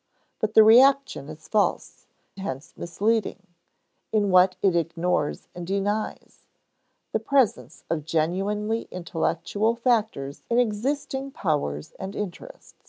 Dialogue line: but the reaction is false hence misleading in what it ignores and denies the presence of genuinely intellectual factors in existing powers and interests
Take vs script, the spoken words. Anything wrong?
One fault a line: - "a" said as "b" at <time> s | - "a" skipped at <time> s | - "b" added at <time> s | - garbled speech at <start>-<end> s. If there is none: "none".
none